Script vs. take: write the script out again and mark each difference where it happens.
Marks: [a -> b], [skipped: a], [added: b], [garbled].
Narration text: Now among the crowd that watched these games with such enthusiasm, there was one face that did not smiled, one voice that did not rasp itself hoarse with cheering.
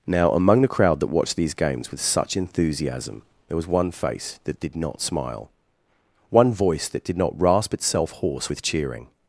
Now among the crowd that watched these games with such enthusiasm, there was one face that did not [smiled, -> smile] one voice that did not rasp itself hoarse with cheering.